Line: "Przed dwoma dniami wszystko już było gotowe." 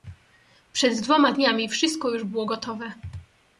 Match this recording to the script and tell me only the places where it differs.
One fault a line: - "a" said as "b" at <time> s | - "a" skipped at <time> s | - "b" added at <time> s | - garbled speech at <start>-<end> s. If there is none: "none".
none